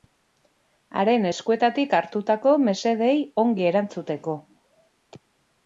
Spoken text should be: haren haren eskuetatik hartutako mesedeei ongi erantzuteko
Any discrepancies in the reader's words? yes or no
yes